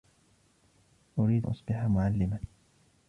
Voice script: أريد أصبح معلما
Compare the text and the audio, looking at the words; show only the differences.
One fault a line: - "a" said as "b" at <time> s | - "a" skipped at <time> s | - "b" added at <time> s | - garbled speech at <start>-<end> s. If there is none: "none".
none